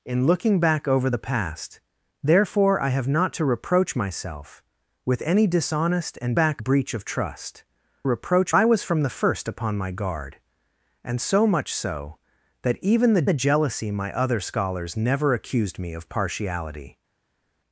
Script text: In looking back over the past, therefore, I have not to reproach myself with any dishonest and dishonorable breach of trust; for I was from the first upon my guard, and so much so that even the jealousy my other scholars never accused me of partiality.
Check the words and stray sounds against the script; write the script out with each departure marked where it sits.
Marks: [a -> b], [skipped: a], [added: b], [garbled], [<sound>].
In looking back over the past, therefore, I have not to reproach myself with any dishonest and [dishonorable -> back] breach of trust; [for -> reproach] I was from the first upon my guard, and so much so that even the [added: the] jealousy my other scholars never accused me of partiality.